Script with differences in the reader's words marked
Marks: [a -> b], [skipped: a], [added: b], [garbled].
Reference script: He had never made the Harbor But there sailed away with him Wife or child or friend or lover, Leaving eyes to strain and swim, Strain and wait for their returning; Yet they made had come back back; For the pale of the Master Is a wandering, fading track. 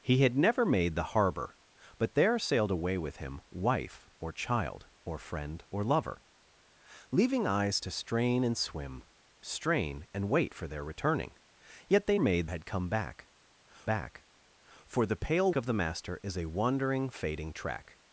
He had never made the Harbor But there sailed away with him Wife or child or friend or lover, Leaving eyes to strain and swim, Strain and wait for their returning; Yet they made had come back back; For the pale of the Master Is a wandering, fading track.